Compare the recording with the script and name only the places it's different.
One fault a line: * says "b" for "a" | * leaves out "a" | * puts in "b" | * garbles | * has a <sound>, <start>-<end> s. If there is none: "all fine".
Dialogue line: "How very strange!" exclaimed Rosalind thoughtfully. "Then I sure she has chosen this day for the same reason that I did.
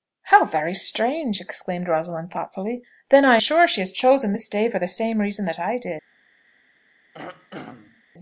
* has a throat clearing, 7.1-8.0 s